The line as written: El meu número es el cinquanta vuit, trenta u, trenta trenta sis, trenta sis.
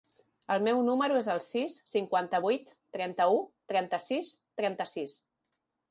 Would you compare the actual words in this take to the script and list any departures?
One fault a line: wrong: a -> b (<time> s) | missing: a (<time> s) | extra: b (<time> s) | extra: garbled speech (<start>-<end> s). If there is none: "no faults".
extra: sis (1.5 s)
missing: trenta (4.0 s)